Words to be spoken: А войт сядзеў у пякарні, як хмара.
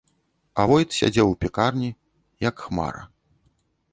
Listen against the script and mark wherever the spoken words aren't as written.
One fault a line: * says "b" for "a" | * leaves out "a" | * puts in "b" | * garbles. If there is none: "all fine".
all fine